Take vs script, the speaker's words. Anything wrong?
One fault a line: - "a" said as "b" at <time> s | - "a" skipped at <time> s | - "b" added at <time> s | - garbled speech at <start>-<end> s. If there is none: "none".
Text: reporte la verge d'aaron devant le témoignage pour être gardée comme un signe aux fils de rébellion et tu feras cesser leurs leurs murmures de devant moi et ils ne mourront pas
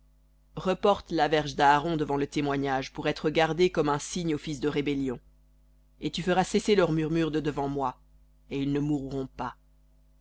- "leurs" skipped at 6.9 s